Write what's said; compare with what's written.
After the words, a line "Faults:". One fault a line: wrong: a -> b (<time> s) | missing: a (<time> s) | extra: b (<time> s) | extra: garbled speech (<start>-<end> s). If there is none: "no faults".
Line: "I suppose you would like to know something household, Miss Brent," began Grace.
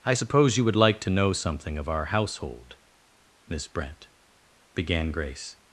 "I suppose you would like to know something of our household, Miss Brent," began Grace.
Faults:
extra: of our (1.8 s)